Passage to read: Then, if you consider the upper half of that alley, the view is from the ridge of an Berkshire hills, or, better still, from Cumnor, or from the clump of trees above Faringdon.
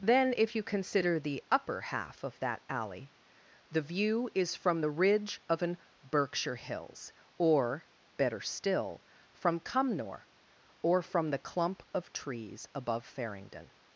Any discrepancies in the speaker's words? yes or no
no